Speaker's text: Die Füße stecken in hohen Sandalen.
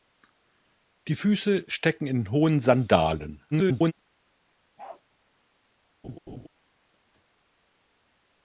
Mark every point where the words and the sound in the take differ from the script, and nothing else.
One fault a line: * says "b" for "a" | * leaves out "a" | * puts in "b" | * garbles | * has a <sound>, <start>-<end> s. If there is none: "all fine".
* garbles
* has a bark, 4.8-5.0 s
* has a laugh, 6.0-6.5 s